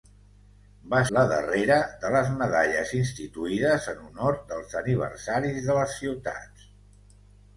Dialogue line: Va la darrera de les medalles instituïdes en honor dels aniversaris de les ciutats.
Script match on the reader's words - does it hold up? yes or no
yes